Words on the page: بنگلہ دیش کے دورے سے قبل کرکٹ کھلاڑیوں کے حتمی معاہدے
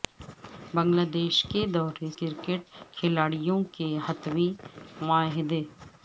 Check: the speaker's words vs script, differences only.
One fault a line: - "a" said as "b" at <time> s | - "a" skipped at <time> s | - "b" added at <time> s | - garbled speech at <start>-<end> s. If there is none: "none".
- "سے قبل" skipped at 2.1 s